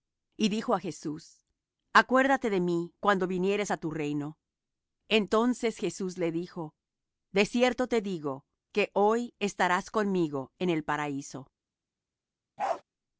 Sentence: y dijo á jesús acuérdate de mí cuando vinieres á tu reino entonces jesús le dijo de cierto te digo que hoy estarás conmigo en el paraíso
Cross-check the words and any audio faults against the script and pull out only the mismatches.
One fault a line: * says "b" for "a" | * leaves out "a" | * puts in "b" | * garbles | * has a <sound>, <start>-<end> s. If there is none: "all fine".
* has a bark, 12.6-12.8 s